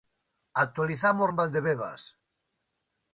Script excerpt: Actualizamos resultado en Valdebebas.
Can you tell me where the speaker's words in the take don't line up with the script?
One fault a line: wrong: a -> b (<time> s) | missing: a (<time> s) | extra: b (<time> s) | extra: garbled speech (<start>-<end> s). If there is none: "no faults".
missing: resultado (1.3 s)